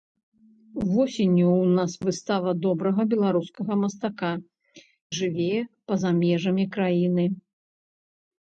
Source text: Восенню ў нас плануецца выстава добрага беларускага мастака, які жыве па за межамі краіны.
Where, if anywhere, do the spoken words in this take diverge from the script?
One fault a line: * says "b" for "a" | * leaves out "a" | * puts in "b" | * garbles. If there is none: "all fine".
* leaves out "плануецца"
* leaves out "які"